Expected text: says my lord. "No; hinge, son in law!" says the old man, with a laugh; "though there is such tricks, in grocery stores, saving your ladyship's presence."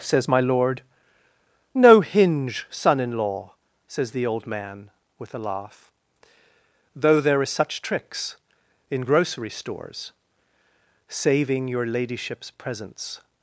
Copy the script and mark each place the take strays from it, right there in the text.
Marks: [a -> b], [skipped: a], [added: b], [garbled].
says my lord. "No; hinge, son in law!" says the old man, with a laugh; "though there is such tricks, in grocery stores, saving your ladyship's presence."